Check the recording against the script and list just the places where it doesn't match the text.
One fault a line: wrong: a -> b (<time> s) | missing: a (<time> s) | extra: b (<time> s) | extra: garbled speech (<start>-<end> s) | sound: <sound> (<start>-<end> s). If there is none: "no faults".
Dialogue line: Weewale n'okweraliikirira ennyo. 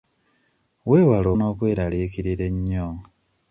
no faults